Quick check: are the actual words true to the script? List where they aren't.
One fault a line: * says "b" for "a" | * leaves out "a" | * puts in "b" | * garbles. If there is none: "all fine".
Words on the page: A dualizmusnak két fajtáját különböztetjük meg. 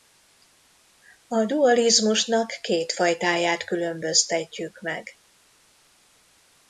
all fine